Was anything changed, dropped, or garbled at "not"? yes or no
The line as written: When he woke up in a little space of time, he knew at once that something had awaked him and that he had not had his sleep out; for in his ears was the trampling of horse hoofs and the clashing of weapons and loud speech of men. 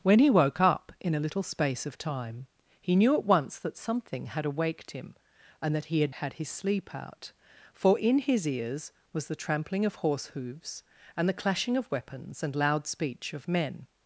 yes